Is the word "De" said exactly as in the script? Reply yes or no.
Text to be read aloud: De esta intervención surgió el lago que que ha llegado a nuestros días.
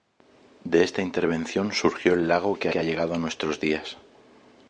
yes